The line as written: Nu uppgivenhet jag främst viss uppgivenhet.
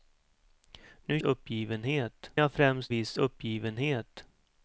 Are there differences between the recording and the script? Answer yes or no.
no